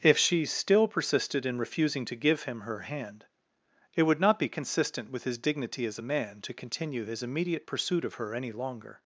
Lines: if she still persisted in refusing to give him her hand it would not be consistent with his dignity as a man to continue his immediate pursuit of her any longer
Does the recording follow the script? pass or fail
pass